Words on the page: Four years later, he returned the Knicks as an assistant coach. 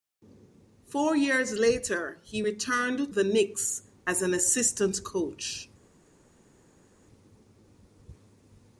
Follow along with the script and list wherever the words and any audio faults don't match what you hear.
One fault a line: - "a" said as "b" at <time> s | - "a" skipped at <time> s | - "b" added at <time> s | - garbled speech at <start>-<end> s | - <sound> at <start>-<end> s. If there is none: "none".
none